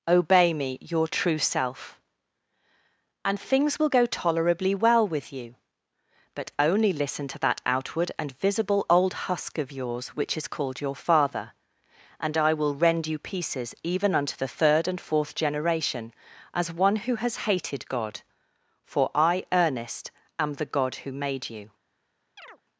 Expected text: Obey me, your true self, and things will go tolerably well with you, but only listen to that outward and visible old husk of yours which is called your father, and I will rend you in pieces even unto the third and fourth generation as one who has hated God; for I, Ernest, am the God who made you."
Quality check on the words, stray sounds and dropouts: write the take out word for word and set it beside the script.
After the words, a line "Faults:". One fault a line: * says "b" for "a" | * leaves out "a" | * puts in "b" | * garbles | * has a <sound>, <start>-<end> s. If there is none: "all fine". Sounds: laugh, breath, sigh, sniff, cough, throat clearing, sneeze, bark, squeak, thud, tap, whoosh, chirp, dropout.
Obey me, your true self, and things will go tolerably well with you, but only listen to that outward and visible old husk of yours which is called your father, and I will rend you pieces even unto the third and fourth generation as one who has hated God; for I, Ernest, am the God who made you."
Faults:
* leaves out "in"
* has a chirp, 22.4-22.6 s